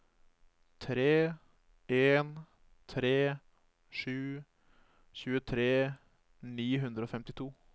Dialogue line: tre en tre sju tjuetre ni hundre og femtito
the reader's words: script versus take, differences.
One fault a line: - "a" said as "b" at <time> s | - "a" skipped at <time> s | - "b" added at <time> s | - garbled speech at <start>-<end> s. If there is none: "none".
none